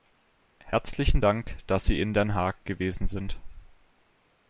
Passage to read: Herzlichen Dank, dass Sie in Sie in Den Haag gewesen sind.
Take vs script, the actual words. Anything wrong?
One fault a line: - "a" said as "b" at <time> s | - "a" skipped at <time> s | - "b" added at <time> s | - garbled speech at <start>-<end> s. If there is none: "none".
- "Sie in" skipped at 2.1 s